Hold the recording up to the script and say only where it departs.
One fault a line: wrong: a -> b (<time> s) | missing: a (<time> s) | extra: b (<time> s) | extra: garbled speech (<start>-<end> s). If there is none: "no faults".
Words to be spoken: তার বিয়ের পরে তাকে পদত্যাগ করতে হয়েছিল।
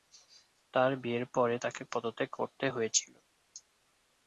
no faults